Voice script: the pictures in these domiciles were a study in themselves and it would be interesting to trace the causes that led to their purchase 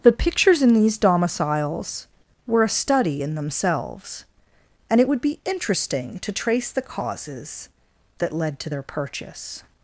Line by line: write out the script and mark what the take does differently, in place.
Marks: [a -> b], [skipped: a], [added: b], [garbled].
the pictures in these domiciles were a study in themselves and it would be interesting to trace the causes that led to their purchase